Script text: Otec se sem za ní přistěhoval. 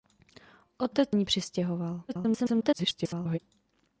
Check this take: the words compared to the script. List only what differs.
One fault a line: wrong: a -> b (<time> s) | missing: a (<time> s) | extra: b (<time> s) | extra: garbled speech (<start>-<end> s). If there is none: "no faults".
missing: se sem za (1.1 s)
extra: garbled speech (2.1-3.4 s)